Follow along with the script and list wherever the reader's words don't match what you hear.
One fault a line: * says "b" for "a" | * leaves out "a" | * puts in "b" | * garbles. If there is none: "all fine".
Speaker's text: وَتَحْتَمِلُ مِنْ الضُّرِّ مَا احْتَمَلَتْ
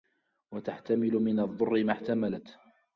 all fine